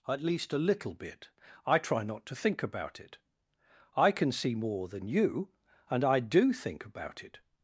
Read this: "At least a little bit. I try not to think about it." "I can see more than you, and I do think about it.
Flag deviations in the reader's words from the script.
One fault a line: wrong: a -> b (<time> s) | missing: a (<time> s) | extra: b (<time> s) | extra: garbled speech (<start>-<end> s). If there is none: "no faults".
no faults